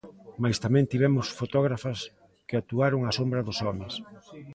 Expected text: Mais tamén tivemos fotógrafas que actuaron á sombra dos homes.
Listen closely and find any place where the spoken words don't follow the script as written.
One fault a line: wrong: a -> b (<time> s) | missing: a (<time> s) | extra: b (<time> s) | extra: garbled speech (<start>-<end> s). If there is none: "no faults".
no faults